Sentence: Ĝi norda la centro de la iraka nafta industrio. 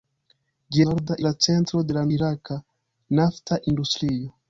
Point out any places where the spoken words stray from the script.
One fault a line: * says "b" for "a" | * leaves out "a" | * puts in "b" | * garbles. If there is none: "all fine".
all fine